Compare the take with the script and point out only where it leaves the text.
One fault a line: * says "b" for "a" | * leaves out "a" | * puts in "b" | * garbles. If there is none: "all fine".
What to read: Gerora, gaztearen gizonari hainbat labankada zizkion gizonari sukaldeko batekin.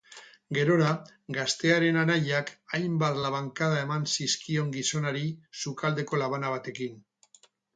* says "anaiak" for "gizonari"
* puts in "eman"
* puts in "labana"